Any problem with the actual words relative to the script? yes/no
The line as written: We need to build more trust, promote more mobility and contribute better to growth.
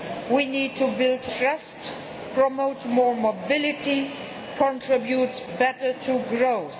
yes